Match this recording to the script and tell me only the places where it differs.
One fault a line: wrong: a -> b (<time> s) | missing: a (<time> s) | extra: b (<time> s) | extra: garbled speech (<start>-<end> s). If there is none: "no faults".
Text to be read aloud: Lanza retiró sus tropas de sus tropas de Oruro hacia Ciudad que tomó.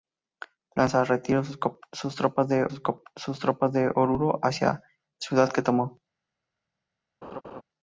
no faults